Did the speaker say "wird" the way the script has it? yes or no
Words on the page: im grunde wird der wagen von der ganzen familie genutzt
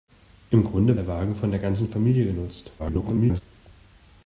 no